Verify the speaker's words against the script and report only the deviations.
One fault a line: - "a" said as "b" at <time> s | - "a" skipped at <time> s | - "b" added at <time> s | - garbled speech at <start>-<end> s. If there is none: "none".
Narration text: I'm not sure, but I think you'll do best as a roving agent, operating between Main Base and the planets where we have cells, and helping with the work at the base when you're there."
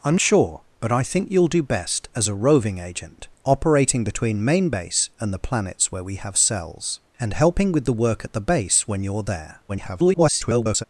- "not" skipped at 0.2 s
- garbled speech at 9.7-10.8 s